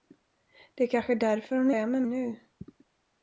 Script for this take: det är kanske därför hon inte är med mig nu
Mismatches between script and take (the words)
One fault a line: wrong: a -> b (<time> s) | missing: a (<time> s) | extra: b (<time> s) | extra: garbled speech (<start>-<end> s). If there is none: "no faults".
missing: inte (1.7 s)
missing: mig (2.0 s)